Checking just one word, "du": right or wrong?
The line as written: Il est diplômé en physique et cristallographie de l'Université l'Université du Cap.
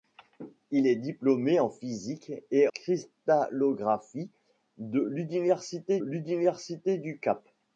right